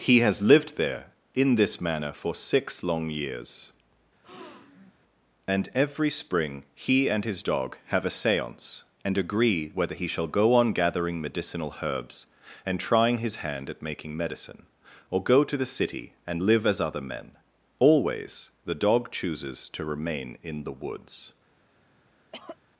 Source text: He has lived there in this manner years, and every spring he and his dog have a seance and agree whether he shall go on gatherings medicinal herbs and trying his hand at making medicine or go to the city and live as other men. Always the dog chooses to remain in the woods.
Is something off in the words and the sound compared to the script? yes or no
yes